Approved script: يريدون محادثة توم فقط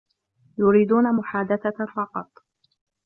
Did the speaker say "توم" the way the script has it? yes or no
no